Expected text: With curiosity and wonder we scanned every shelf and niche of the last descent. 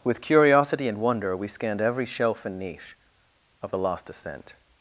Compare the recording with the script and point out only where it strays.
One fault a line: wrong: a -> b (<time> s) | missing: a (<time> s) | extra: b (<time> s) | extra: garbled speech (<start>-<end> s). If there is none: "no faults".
wrong: last descent -> lost ascent (3.8 s)